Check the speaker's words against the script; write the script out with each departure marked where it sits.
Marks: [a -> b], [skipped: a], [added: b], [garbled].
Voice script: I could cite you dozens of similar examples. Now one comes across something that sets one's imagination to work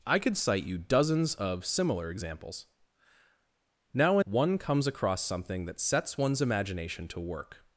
I could cite you dozens of similar examples. Now one comes across something that sets one's imagination to work